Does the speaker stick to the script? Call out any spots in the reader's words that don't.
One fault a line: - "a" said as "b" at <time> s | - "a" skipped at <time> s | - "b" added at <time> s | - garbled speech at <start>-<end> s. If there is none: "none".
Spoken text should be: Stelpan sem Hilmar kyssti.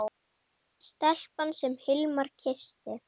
none